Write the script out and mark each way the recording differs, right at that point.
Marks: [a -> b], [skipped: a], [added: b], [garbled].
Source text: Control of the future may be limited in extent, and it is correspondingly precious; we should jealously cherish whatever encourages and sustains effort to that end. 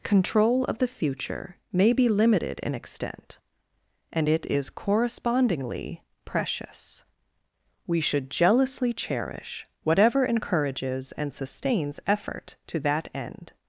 Control of the future may be limited in extent, and it is correspondingly precious; we should jealously cherish whatever encourages and sustains effort to that end.